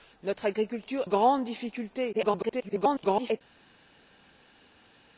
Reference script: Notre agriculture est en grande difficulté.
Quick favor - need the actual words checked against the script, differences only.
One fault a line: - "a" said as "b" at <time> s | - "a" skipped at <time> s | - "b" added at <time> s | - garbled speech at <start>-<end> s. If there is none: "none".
- "est en" skipped at 1.0 s
- garbled speech at 2.1-3.4 s